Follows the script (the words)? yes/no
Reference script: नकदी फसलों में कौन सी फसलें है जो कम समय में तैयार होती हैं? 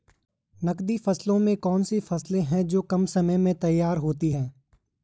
yes